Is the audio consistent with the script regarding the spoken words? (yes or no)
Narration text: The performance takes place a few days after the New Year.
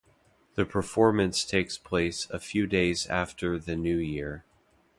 yes